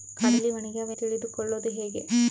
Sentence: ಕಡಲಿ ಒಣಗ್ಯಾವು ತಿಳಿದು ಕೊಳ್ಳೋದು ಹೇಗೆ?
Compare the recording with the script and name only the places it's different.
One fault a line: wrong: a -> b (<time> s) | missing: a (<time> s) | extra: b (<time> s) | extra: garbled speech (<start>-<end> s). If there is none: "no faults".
no faults